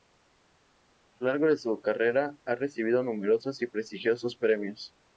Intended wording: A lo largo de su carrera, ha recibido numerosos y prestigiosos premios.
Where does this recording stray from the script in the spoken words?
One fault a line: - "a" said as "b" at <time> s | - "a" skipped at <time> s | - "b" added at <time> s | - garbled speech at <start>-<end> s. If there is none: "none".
none